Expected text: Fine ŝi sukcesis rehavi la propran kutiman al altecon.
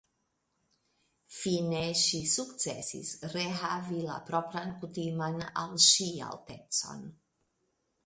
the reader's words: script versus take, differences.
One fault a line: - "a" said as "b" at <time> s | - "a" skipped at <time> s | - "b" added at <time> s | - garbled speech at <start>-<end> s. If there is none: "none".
- "ŝi" added at 5.9 s